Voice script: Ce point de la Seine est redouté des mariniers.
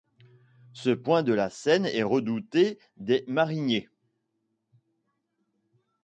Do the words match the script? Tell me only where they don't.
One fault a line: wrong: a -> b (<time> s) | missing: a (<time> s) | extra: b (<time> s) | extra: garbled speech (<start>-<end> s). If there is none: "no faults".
no faults